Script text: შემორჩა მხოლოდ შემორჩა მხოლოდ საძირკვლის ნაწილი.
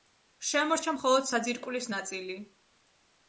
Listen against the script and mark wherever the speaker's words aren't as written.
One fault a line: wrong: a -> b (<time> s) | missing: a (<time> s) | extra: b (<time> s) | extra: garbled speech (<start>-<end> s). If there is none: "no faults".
missing: შემორჩა მხოლოდ (1.3 s)